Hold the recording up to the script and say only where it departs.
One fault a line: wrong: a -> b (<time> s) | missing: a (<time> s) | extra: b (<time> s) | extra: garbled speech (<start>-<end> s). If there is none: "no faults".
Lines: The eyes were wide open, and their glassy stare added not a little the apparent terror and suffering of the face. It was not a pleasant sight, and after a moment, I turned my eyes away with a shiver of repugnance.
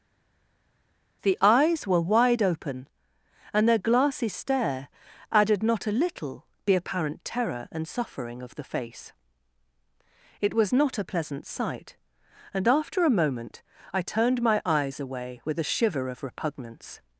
no faults